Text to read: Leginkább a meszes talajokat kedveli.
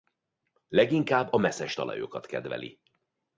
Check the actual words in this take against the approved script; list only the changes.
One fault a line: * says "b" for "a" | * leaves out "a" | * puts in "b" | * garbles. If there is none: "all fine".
all fine